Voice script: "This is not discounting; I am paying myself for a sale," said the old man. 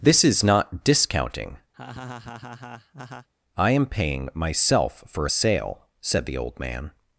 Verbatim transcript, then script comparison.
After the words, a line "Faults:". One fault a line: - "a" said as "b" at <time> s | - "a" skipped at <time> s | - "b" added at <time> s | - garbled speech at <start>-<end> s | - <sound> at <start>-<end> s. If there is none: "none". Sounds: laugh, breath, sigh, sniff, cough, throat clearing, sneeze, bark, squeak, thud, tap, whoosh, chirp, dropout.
"This is not discounting; I am paying myself for a sale," said the old man.
Faults:
- laugh at 1.7-3.3 s